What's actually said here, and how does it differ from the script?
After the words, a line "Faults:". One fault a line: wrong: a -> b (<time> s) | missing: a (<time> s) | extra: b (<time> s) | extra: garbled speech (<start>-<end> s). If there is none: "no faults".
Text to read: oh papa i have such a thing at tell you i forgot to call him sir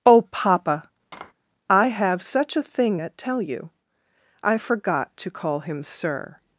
oh papa i have such a thing at tell you i forgot to call him sir
Faults:
no faults